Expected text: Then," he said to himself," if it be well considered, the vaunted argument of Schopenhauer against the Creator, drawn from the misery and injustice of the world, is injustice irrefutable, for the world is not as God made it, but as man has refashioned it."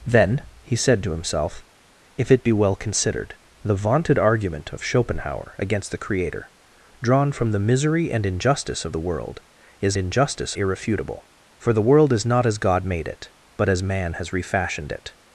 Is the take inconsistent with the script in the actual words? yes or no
no